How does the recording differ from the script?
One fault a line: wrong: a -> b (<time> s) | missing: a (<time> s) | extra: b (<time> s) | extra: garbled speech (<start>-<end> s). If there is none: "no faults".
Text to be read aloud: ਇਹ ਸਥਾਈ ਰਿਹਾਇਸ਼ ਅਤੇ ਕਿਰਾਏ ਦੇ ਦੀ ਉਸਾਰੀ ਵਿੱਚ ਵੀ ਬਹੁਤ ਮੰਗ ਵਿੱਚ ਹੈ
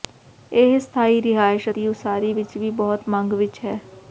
missing: ਅਤੇ ਕਿਰਾਏ ਦੇ (1.7 s)